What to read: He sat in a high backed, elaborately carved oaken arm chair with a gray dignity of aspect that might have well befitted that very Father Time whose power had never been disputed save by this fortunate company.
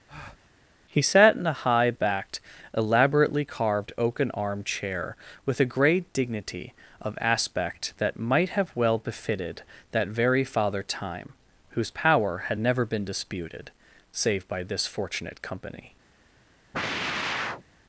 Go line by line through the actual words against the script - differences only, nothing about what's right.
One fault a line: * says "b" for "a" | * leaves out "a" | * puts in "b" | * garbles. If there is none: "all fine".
* says "great" for "gray"